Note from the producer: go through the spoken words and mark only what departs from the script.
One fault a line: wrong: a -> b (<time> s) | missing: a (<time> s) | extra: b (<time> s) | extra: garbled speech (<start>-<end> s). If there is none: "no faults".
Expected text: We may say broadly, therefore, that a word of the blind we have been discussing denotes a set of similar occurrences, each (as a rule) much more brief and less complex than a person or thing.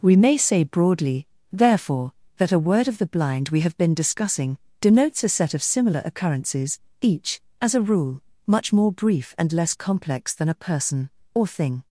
no faults